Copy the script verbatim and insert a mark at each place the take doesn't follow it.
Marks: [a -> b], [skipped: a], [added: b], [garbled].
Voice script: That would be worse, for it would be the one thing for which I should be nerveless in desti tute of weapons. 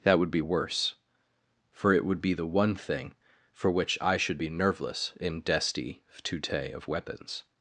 That would be worse, for it would be the one thing for which I should be nerveless in desti tute of weapons.